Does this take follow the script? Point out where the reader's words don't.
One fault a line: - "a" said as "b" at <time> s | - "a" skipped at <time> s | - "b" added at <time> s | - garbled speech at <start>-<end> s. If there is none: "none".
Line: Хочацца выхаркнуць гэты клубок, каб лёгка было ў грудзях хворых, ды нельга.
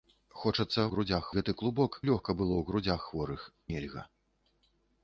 - "выхаркнуць" said as "грудзях" at 1.0 s
- "каб" skipped at 2.0 s
- "ды" skipped at 3.5 s